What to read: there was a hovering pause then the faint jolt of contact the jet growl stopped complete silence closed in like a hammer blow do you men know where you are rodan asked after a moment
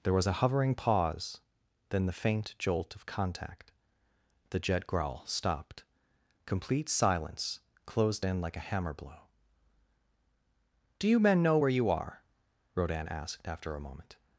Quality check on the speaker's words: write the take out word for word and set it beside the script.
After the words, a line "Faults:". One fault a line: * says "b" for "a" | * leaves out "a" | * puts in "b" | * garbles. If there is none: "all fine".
there was a hovering pause then the faint jolt of contact the jet growl stopped complete silence closed in like a hammer blow do you men know where you are rodan asked after a moment
Faults:
all fine